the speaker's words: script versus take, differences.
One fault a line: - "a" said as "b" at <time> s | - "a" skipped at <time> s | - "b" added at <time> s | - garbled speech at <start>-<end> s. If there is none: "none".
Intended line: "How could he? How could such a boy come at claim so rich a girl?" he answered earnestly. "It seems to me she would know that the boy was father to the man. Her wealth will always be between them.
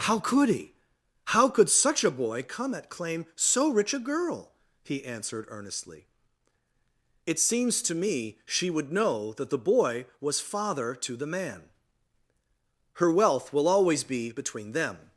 none